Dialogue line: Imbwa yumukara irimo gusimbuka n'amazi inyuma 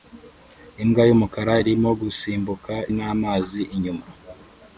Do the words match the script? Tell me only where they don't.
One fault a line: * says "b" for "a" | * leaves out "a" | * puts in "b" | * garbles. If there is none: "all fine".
all fine